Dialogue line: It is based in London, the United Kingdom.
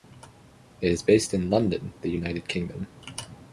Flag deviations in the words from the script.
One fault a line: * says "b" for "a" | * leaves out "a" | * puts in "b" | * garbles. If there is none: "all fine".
all fine